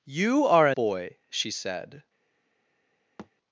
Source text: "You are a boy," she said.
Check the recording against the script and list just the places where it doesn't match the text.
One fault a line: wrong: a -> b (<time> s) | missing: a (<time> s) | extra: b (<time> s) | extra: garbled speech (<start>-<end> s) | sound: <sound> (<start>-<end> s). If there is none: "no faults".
sound: thud (3.2-3.3 s)